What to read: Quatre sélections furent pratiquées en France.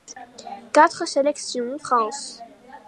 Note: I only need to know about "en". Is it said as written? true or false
false